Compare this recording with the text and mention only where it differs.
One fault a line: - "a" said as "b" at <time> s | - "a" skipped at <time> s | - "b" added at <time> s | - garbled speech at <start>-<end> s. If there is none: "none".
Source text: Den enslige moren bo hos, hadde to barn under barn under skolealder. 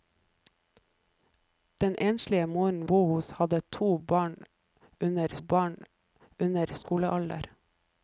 none